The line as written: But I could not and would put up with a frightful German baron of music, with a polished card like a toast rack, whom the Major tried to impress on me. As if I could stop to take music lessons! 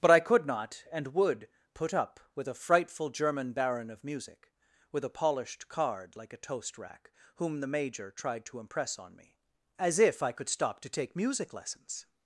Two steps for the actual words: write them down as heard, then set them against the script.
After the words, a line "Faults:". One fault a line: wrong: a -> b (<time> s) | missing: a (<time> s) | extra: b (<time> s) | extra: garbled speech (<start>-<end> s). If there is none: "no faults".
But I could not and would put up with a frightful German baron of music, with a polished card like a toast rack, whom the Major tried to impress on me. As if I could stop to take music lessons!
Faults:
no faults